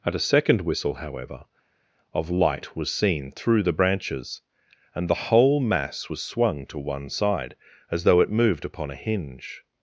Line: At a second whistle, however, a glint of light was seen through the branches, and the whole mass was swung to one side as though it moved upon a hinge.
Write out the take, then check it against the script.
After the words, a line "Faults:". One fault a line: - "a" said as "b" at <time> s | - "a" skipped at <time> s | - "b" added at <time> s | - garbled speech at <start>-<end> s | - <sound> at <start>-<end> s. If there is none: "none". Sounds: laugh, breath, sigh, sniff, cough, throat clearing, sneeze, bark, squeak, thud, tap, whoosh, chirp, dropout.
At a second whistle, however, of light was seen through the branches, and the whole mass was swung to one side as though it moved upon a hinge.
Faults:
- "a glint" skipped at 1.4 s